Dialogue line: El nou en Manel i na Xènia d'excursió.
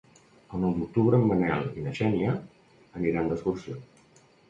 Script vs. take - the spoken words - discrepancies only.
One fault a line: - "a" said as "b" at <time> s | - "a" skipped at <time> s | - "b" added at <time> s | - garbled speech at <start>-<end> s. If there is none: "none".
- "d'octubre" added at 0.8 s
- "aniran" added at 3.0 s